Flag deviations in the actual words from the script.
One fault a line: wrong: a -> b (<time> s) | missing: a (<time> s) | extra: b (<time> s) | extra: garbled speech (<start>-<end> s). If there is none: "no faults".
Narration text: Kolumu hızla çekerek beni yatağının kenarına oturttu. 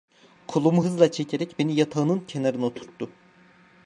no faults